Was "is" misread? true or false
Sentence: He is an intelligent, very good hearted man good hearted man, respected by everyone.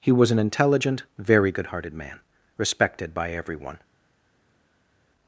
true